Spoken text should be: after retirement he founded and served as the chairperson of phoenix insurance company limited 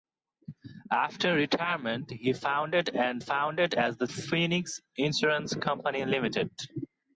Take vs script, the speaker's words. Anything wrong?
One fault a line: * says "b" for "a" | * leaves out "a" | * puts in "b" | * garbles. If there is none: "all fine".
* says "founded" for "served"
* leaves out "chairperson of"